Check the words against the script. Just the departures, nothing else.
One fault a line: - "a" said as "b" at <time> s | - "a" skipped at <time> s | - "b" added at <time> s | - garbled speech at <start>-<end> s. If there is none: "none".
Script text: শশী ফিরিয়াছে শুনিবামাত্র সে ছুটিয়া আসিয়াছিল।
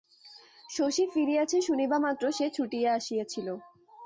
none